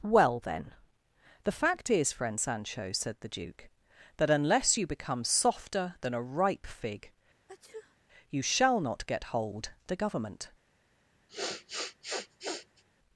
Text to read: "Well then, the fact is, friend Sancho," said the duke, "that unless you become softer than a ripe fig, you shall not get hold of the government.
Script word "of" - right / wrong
wrong